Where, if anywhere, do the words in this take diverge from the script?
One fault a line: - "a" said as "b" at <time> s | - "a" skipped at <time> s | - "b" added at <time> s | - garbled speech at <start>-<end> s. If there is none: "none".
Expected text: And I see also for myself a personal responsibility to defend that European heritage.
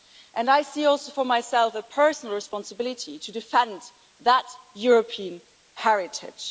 none